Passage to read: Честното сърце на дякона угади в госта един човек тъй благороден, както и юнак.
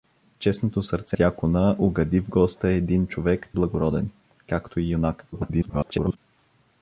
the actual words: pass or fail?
fail